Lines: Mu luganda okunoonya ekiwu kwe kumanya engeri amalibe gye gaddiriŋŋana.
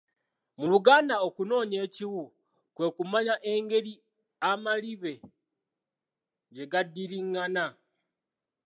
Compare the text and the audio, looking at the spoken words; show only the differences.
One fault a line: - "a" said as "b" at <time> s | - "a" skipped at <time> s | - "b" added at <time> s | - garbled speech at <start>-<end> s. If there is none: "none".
none